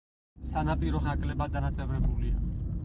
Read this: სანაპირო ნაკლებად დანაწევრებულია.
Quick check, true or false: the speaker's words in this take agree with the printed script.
true